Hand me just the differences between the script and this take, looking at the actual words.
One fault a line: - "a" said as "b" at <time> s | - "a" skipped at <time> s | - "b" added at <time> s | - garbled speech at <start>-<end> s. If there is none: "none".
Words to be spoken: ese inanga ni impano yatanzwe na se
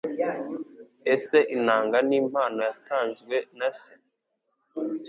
none